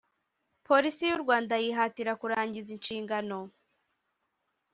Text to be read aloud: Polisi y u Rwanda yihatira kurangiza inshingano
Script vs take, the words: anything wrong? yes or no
no